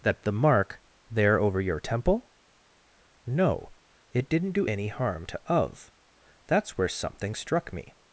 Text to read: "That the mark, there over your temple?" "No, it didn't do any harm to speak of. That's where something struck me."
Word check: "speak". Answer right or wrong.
wrong